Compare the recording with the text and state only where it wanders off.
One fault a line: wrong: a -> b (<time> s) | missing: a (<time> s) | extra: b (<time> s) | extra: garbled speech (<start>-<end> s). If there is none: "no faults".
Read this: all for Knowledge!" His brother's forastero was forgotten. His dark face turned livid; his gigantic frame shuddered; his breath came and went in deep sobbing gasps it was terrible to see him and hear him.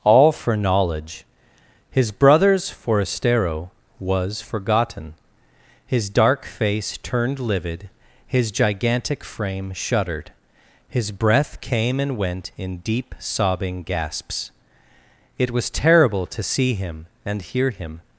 no faults